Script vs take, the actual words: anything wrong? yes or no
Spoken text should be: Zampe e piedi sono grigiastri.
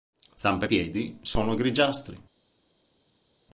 no